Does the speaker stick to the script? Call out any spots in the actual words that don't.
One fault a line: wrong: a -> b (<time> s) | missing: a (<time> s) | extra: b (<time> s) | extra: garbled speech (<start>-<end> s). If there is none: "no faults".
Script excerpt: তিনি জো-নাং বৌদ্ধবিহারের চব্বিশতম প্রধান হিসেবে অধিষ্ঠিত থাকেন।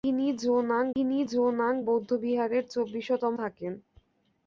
extra: তিনি জো-নাং (0.9 s)
missing: প্রধান হিসেবে অধিষ্ঠিত (3.4 s)